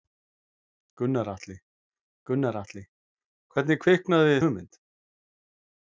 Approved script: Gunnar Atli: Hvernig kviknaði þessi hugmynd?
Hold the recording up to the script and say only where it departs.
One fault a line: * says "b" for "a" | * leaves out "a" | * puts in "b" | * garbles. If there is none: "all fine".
* puts in "gunnar Atli"
* leaves out "þessi"